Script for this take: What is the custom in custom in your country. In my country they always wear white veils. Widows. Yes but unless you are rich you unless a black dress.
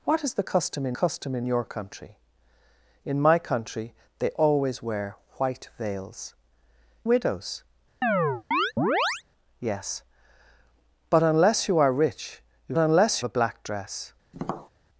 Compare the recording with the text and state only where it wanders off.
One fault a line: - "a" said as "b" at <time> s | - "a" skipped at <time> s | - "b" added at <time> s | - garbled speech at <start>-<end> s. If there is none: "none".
none